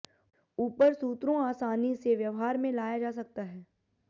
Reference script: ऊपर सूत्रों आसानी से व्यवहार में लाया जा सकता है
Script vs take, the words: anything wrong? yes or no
no